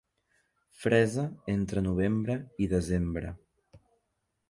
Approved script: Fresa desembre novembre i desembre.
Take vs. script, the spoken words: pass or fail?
fail